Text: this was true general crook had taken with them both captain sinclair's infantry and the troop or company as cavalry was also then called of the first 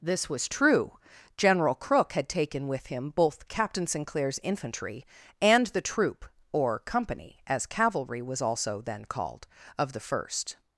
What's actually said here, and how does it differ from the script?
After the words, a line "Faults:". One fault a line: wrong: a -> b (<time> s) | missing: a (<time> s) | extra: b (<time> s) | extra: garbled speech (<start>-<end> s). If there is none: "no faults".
this was true general crook had taken with him both captain sinclair's infantry and the troop or company as cavalry was also then called of the first
Faults:
wrong: them -> him (2.9 s)